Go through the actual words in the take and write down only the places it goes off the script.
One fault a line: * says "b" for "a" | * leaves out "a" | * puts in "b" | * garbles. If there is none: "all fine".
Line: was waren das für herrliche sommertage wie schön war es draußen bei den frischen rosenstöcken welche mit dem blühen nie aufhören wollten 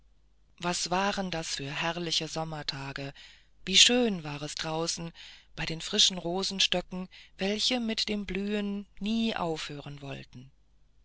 all fine